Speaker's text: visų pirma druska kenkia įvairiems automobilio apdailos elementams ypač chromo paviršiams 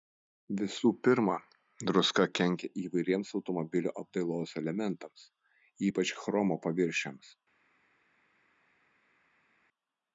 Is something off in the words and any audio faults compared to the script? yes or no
no